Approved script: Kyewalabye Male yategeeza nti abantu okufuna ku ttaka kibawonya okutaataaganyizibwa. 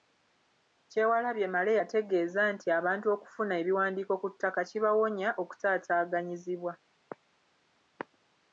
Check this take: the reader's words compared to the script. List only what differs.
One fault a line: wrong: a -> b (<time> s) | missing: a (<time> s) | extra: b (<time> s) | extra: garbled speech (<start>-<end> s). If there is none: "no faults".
extra: ebiwandiiko (3.6 s)